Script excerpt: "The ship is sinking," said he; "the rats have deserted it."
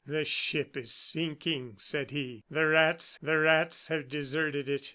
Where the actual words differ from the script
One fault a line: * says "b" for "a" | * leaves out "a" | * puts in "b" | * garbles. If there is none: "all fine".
* puts in "the rats"